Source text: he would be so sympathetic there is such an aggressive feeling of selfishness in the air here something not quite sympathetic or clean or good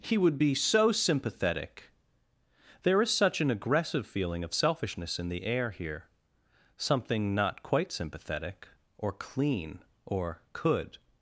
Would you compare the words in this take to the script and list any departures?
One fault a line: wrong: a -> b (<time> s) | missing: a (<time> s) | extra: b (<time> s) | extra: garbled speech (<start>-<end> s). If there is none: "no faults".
wrong: good -> could (10.5 s)